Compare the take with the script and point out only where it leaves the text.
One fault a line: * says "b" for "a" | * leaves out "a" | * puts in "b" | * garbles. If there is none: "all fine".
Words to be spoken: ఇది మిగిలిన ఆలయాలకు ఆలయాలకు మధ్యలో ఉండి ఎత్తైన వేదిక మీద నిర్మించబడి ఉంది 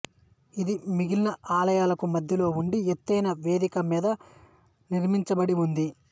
* leaves out "ఆలయాలకు"